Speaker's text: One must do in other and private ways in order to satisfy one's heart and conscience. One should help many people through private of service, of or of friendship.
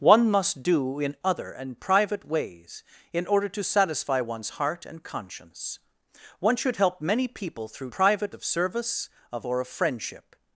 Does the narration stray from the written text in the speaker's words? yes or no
no